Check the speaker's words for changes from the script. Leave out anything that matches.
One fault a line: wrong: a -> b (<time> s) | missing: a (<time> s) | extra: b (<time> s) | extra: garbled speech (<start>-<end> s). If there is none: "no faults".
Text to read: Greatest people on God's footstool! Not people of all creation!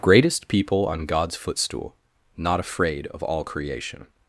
wrong: people -> afraid (2.6 s)